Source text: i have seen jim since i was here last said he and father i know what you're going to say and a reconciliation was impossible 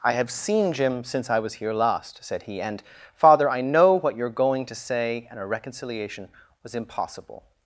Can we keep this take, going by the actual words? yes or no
yes